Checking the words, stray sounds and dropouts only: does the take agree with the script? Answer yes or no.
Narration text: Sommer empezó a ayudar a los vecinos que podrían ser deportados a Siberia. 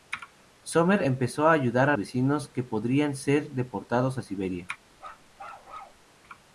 no